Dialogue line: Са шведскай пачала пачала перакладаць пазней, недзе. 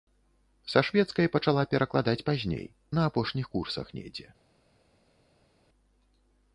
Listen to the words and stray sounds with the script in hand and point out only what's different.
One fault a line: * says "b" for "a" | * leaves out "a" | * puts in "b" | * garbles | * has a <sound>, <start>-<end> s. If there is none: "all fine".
* leaves out "пачала"
* puts in "на апошніх курсах"